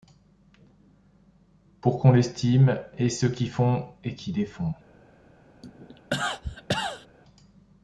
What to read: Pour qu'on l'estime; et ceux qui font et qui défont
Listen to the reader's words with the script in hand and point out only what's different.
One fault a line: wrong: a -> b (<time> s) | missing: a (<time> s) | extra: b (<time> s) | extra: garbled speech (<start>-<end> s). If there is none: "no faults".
no faults